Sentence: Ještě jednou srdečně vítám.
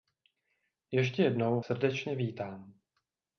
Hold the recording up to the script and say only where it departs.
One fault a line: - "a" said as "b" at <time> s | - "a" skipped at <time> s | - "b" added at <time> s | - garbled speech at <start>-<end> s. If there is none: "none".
none